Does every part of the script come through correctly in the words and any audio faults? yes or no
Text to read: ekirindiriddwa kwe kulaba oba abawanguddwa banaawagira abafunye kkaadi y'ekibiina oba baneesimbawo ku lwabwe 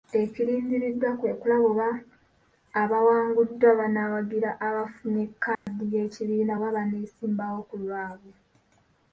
no